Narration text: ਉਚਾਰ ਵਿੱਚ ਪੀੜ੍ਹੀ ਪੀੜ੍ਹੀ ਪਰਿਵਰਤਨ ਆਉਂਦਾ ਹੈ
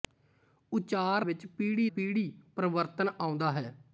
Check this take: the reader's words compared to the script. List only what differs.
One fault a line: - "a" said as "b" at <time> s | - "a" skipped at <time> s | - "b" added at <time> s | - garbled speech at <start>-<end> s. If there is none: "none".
none